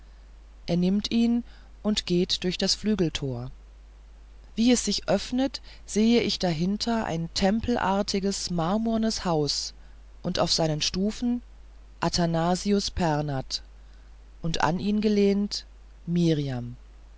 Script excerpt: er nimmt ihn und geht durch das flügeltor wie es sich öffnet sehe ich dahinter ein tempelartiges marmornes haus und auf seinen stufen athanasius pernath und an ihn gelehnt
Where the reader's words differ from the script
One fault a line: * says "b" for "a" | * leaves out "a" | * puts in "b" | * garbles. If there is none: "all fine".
all fine